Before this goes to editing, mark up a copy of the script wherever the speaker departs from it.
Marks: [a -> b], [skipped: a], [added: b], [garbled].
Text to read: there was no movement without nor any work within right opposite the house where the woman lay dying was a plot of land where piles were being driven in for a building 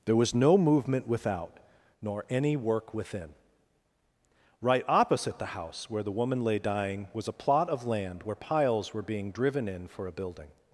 there was no movement without nor any work within right opposite the house where the woman lay dying was a plot of land where piles were being driven in for a building